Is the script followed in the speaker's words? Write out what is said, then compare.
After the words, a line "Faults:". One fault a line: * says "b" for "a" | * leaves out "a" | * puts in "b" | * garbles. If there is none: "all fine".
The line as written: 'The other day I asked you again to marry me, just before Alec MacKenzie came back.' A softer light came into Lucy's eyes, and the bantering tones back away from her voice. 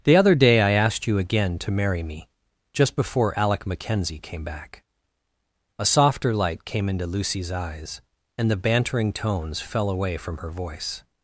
'The other day I asked you again to marry me, just before Alec MacKenzie came back.' A softer light came into Lucy's eyes, and the bantering tones fell away from her voice.
Faults:
* says "fell" for "back"